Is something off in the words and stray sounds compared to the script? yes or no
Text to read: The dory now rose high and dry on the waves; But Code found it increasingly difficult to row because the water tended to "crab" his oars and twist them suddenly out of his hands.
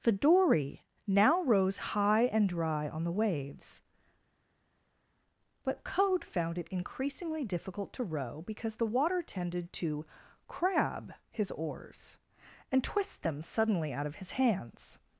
no